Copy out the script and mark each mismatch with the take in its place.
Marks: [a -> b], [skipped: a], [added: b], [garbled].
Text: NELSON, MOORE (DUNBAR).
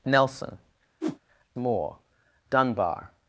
NELSON, MOORE (DUNBAR).